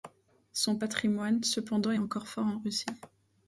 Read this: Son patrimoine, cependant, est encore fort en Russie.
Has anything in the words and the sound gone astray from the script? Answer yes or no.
no